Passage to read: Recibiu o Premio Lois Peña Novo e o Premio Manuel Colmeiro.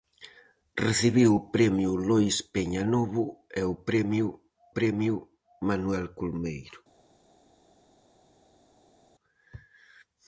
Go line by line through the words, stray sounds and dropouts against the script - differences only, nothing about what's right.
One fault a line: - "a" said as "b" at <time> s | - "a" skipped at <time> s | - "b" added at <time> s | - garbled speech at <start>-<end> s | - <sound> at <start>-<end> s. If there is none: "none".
- "Premio" added at 4.8 s